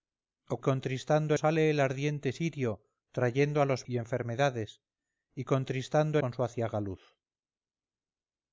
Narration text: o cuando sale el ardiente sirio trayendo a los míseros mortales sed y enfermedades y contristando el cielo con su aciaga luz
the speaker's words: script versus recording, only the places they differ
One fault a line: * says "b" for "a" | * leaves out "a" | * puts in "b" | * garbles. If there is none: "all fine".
* says "contristando" for "cuando"
* leaves out "míseros mortales sed"
* leaves out "el cielo"